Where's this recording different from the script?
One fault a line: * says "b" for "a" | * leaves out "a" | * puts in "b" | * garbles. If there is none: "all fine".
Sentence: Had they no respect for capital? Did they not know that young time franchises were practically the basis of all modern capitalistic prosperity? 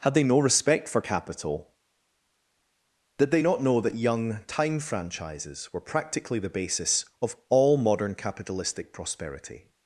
all fine